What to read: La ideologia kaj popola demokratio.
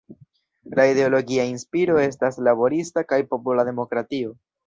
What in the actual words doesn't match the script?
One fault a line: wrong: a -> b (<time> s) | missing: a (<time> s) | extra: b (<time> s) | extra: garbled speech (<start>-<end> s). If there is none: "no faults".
extra: inspiro estas laborista (1.5 s)